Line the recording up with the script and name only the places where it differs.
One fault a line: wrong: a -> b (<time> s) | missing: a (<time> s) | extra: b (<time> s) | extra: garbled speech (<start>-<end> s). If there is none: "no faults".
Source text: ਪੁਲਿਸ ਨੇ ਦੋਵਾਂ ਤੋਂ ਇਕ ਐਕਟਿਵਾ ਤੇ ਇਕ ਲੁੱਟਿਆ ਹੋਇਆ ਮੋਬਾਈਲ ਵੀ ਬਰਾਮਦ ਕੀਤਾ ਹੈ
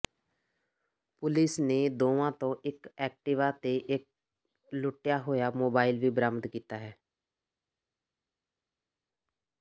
no faults